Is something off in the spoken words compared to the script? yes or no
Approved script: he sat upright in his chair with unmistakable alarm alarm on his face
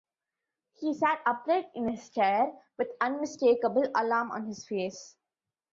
yes